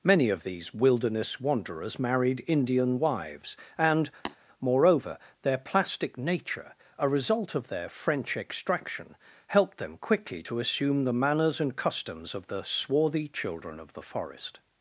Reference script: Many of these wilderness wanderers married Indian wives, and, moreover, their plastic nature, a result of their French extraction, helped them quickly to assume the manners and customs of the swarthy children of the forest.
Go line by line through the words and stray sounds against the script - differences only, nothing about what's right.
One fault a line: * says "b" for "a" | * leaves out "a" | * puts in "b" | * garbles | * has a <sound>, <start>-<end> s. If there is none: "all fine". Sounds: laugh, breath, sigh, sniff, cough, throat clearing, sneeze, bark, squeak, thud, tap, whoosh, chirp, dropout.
* has a tap, 4.3-4.4 s